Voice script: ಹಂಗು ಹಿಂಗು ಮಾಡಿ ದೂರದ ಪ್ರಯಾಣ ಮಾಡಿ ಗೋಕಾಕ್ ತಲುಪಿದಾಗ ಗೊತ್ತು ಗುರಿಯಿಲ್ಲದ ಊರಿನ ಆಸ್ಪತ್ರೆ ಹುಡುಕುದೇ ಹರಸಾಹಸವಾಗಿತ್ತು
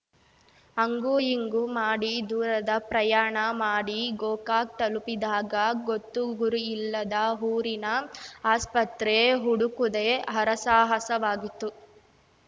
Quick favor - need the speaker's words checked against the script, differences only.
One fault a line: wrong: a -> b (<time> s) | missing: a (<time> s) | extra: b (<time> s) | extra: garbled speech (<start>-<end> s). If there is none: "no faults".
no faults